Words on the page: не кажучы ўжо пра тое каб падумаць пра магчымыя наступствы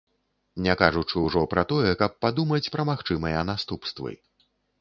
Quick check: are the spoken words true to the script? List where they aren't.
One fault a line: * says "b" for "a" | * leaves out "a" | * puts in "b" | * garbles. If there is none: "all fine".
all fine